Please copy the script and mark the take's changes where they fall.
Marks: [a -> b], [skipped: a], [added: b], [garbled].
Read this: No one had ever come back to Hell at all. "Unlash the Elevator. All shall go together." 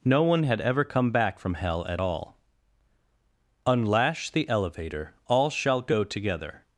No one had ever come back [to -> from] Hell at all. "Unlash the Elevator. All shall go together."